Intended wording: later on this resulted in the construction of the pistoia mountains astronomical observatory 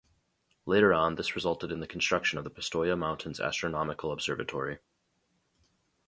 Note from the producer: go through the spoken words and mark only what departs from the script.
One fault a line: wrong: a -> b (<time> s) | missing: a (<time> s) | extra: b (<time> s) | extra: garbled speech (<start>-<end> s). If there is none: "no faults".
no faults